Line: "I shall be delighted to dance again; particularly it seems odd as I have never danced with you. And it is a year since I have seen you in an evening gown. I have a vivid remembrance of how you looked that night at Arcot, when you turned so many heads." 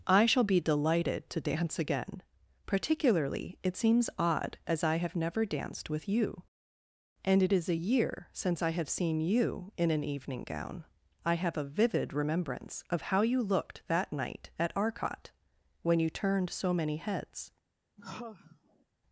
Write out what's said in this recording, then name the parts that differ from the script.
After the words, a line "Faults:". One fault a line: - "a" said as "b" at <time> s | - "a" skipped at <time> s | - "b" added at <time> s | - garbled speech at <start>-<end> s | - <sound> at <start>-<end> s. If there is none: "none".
"I shall be delighted to dance again; particularly it seems odd as I have never danced with you. And it is a year since I have seen you in an evening gown. I have a vivid remembrance of how you looked that night at Arcot, when you turned so many heads."
Faults:
- sigh at 18.0-18.9 s